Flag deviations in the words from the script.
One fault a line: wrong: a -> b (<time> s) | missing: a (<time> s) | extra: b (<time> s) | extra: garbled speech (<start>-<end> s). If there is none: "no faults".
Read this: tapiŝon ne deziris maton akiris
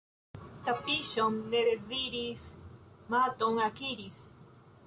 no faults